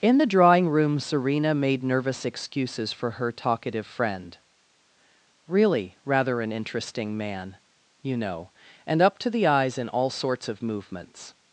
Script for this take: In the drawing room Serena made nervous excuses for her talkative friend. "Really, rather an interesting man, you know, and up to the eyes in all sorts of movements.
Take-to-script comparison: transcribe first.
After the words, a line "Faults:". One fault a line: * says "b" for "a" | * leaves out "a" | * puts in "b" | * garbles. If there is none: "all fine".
In the drawing room Serena made nervous excuses for her talkative friend. "Really, rather an interesting man, you know, and up to the eyes in all sorts of movements.
Faults:
all fine